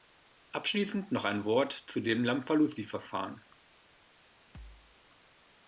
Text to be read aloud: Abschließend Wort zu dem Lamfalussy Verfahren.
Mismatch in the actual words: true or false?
true